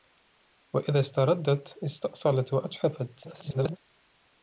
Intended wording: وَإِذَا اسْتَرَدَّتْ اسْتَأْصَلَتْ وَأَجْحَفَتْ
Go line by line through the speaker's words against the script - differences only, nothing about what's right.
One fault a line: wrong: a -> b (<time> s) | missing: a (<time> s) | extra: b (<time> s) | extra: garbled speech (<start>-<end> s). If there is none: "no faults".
extra: garbled speech (3.2-3.8 s)